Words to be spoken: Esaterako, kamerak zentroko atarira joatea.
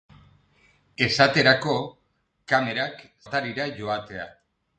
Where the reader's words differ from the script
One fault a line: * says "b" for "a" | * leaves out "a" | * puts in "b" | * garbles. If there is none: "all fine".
* leaves out "zentroko"